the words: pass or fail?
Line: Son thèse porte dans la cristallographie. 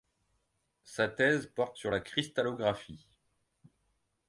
fail